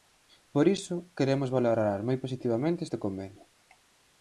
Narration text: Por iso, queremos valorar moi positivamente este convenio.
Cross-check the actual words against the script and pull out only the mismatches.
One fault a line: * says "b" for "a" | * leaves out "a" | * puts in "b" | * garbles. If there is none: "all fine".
all fine